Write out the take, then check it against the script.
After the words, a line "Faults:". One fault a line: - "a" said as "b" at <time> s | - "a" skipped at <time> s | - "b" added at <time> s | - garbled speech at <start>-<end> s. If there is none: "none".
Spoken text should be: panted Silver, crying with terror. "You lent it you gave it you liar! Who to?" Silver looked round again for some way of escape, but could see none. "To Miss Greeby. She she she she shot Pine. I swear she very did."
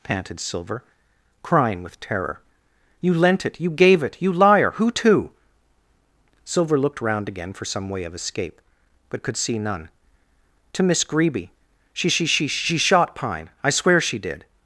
panted Silver, crying with terror. "You lent it you gave it you liar! Who to?" Silver looked round again for some way of escape, but could see none. "To Miss Greeby. She she she she shot Pine. I swear she did."
Faults:
- "very" skipped at 14.2 s